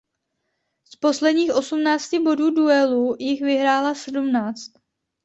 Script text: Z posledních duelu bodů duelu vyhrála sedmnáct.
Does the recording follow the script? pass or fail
fail